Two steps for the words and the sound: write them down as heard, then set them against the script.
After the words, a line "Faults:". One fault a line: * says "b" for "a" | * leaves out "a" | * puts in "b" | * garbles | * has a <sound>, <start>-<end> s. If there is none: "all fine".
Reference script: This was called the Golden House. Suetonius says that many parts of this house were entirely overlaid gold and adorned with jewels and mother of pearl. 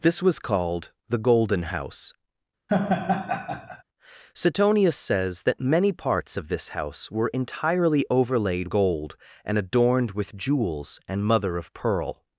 This was called the Golden House. Suetonius says that many parts of this house were entirely overlaid gold and adorned with jewels and mother of pearl.
Faults:
* has a laugh, 2.7-3.8 s